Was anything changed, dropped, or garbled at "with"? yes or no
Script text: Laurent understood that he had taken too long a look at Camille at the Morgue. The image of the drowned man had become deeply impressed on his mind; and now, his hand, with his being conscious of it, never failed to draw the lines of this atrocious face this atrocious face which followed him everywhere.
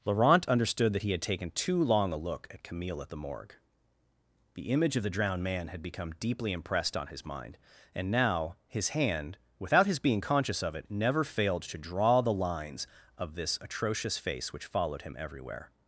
yes